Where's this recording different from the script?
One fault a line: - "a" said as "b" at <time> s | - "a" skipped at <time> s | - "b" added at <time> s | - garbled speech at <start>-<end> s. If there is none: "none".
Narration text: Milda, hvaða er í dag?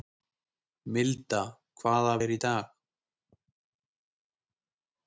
none